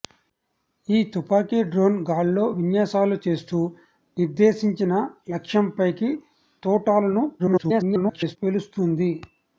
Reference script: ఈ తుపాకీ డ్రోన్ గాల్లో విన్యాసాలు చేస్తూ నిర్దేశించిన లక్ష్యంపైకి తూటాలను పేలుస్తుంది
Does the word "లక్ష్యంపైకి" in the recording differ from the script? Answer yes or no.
no